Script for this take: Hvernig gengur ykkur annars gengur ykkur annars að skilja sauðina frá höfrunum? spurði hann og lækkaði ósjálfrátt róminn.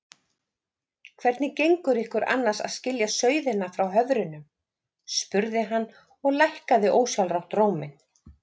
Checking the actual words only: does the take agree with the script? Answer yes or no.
no